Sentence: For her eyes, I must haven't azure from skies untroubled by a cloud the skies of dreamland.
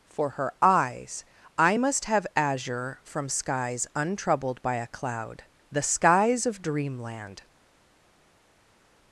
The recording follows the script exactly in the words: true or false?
false